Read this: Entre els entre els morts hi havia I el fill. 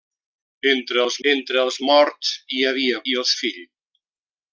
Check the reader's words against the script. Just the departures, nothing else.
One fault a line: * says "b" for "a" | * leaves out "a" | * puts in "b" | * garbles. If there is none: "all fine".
all fine